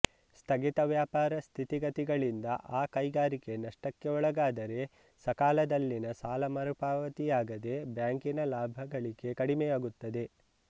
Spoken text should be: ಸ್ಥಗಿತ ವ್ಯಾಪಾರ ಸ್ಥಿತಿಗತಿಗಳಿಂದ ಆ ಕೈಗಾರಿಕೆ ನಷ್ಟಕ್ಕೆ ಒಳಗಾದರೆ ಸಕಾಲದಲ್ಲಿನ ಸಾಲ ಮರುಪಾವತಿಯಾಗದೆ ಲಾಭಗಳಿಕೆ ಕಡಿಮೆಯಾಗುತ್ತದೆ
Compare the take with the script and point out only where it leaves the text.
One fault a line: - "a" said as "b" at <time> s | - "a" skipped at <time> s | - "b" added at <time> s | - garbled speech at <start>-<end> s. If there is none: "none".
- "ಬ್ಯಾಂಕಿನ" added at 7.9 s